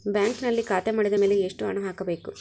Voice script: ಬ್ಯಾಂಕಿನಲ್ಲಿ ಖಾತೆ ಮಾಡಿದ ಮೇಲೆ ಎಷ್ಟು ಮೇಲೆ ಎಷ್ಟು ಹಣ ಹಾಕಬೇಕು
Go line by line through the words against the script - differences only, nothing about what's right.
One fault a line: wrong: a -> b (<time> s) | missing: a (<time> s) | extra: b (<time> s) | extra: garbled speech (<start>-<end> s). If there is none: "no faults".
missing: ಮೇಲೆ ಎಷ್ಟು (1.7 s)